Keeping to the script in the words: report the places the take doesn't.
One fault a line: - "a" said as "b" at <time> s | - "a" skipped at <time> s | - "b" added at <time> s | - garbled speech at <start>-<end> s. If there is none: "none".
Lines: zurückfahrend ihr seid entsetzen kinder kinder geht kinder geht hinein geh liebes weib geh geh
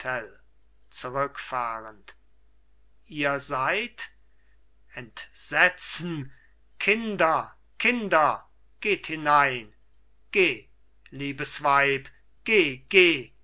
- "kinder geht" skipped at 9.1 s